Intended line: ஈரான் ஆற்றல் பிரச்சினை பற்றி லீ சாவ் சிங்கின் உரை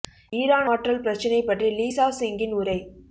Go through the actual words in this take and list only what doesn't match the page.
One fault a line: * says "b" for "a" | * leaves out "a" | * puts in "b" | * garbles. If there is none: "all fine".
all fine